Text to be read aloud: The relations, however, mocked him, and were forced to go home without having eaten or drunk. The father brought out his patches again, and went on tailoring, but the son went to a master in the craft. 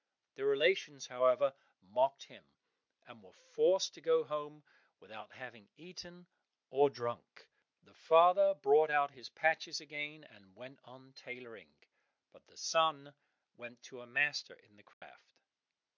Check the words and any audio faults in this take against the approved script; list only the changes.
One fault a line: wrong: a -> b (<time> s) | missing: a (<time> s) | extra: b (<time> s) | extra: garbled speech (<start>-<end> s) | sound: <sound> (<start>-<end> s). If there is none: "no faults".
sound: dropout (14.9-15.0 s)